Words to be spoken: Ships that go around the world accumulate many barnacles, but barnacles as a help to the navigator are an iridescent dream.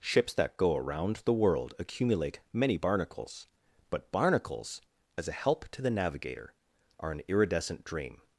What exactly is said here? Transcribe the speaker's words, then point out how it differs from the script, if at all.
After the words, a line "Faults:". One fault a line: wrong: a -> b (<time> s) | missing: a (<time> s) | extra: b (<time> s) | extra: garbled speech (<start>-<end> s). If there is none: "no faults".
Ships that go around the world accumulate many barnacles, but barnacles as a help to the navigator are an iridescent dream.
Faults:
no faults